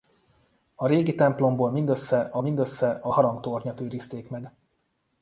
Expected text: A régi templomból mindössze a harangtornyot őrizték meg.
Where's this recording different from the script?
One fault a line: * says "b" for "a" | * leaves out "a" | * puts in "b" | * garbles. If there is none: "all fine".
* puts in "mindössze a"